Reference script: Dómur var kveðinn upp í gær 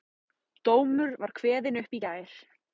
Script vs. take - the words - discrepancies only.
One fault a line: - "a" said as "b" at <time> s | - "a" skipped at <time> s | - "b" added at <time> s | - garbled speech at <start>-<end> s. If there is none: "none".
none